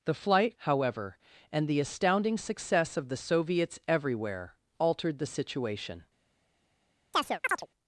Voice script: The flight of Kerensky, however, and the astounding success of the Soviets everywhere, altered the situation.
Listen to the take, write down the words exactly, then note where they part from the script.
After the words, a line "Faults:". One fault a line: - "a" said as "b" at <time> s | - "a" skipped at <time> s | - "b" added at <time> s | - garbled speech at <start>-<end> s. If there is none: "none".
The flight however, and the astounding success of the Soviets everywhere, altered the situation.
Faults:
- "of Kerensky" skipped at 0.5 s